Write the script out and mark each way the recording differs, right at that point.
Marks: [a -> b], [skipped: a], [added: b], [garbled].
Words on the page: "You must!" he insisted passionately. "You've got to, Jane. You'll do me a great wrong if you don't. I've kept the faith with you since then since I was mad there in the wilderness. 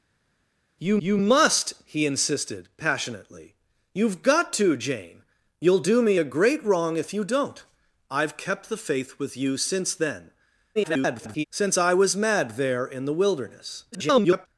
"You [added: you] must!" he insisted passionately. "You've got to, Jane. You'll do me a great wrong if you don't. I've kept the faith with you since then [garbled] since I was mad there in the wilderness. [garbled]